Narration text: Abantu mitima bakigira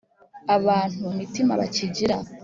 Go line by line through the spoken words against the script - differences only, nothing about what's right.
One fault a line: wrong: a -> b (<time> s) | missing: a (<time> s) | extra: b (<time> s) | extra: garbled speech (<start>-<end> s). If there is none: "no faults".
no faults